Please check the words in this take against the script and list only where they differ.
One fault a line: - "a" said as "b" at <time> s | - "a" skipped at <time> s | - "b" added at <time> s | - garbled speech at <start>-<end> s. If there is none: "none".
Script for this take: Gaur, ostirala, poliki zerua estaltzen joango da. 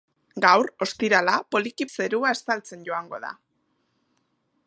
none